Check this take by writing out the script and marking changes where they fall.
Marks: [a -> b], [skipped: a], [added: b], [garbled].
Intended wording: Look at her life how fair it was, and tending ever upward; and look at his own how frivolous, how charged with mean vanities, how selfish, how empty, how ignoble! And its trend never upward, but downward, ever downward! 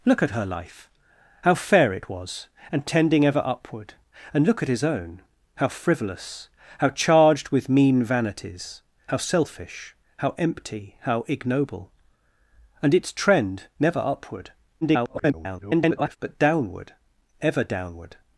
Look at her life how fair it was, and tending ever upward; and look at his own how frivolous, how charged with mean vanities, how selfish, how empty, how ignoble! And its trend never upward, [garbled] but downward, ever downward!